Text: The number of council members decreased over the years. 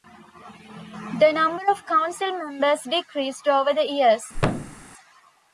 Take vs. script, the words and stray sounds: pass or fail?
fail